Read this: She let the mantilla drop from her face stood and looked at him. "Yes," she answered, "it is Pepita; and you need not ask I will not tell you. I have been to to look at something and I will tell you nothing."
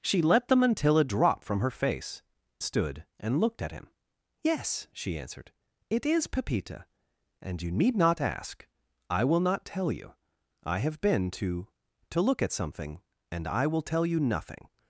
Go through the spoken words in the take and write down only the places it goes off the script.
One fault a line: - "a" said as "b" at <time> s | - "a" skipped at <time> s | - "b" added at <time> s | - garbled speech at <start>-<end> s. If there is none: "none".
none